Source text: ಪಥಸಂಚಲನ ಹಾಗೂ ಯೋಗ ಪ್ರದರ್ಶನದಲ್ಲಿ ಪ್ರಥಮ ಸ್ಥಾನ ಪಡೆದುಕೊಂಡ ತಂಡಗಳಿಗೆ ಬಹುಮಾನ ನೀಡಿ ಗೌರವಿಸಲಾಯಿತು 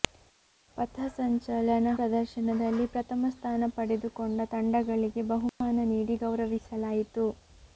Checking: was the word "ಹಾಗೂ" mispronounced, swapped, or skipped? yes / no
yes